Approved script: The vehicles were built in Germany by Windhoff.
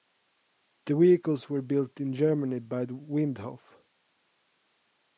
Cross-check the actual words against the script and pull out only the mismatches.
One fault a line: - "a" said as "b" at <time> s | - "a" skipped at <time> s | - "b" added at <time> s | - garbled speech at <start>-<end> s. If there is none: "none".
none